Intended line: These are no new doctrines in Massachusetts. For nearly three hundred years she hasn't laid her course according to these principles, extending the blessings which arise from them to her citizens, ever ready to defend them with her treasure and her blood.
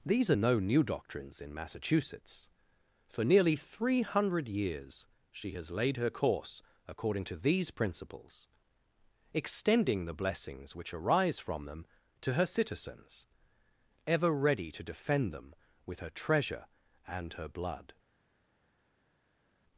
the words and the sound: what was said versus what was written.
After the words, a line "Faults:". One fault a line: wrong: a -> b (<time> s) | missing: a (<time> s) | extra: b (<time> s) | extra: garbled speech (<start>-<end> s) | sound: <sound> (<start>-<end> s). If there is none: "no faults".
These are no new doctrines in Massachusetts. For nearly three hundred years she has laid her course according to these principles, extending the blessings which arise from them to her citizens, ever ready to defend them with her treasure and her blood.
Faults:
wrong: hasn't -> has (5.5 s)